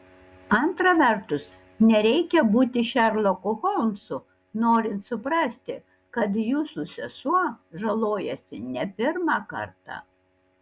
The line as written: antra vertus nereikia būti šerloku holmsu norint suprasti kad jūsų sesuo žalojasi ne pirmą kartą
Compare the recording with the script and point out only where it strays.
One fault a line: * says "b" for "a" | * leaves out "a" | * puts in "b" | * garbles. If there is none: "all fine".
all fine